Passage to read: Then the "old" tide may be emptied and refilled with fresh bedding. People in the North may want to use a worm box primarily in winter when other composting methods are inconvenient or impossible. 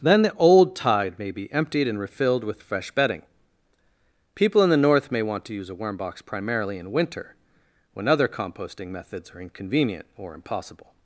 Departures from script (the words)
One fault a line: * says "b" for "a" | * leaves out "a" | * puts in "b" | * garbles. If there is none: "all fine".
all fine